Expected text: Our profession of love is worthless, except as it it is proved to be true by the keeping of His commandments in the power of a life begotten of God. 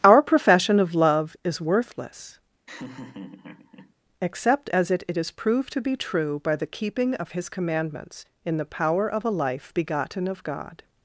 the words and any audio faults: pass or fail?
fail